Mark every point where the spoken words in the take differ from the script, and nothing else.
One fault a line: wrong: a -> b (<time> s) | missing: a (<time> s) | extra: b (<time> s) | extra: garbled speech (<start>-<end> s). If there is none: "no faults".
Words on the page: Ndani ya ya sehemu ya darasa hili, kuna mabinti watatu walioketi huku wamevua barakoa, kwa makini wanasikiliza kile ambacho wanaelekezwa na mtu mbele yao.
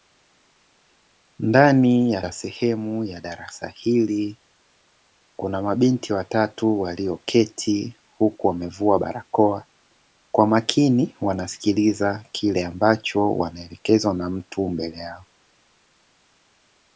no faults